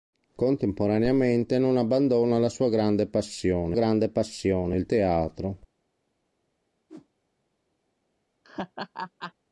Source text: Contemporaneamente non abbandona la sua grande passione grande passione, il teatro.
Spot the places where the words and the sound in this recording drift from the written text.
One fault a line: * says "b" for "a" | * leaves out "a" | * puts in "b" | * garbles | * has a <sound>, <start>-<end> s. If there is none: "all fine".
* has a whoosh, 6.9-7.1 s
* has a laugh, 8.4-9.3 s